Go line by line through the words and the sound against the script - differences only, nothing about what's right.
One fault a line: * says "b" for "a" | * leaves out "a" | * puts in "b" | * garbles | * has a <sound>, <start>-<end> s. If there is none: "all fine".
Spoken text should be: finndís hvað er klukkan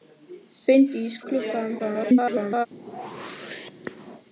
* leaves out "hvað"
* garbles
* has a whoosh, 2.7-4.2 s